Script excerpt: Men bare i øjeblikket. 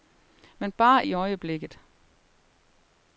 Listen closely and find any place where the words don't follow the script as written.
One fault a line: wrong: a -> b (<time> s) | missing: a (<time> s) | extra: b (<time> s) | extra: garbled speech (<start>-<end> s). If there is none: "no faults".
no faults